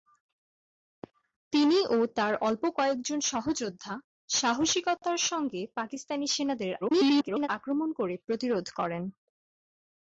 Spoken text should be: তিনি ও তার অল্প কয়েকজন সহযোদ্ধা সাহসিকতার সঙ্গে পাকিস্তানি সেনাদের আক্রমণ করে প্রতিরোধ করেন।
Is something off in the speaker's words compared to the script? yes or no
yes